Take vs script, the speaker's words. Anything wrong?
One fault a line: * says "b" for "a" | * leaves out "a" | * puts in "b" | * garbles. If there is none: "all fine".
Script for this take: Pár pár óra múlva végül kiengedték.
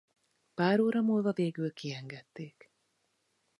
* leaves out "pár"